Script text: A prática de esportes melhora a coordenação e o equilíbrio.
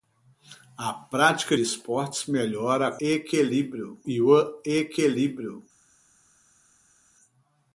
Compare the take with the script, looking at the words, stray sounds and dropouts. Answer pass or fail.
fail